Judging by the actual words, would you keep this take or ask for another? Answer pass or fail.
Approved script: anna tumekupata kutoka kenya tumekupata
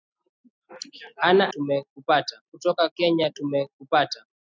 pass